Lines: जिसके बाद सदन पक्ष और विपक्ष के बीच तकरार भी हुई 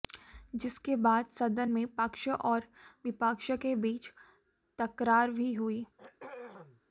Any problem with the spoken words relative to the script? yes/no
yes